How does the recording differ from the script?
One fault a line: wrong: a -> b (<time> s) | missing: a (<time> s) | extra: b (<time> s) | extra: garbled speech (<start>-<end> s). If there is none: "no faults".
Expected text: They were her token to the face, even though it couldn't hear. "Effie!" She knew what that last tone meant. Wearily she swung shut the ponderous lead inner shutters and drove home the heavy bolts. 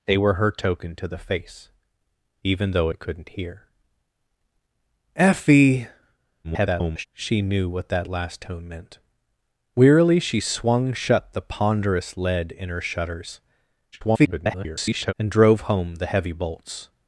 extra: garbled speech (6.4-7.1 s)
extra: garbled speech (13.9-15.1 s)